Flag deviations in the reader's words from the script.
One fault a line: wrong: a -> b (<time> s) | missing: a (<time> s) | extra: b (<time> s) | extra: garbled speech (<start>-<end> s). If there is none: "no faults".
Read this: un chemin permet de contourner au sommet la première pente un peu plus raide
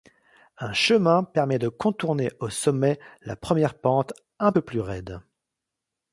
no faults